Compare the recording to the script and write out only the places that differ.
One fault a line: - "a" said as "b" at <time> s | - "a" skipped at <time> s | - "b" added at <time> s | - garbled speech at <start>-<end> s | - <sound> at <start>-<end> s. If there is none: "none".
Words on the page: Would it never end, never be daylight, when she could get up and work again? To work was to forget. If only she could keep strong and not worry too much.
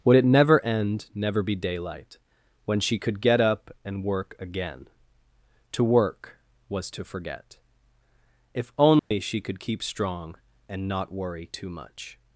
- dropout at 9.0-9.1 s